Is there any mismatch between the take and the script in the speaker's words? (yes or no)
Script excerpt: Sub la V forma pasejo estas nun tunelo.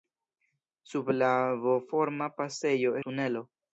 yes